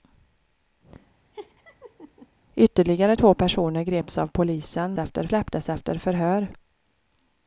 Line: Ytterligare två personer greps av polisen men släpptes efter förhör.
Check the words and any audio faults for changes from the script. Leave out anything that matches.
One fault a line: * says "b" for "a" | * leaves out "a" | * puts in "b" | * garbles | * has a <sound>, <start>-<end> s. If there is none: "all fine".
* has a laugh, 1.3-2.3 s
* says "efter" for "men"